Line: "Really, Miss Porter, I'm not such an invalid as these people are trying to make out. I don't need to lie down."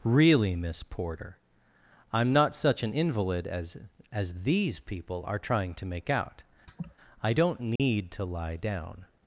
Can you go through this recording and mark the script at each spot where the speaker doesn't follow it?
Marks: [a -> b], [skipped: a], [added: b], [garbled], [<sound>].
"Really, Miss Porter, I'm not such an invalid as [added: as] these people are trying to make out. [laugh] I don't need [dropout] to lie down."